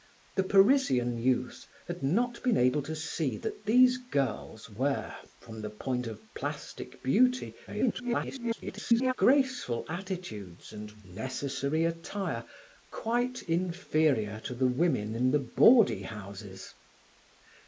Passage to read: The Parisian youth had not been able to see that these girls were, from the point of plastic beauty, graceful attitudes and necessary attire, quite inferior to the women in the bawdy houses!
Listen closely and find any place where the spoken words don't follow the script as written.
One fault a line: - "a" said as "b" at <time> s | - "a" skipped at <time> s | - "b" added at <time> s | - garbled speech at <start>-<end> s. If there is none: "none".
- garbled speech at 7.7-9.1 s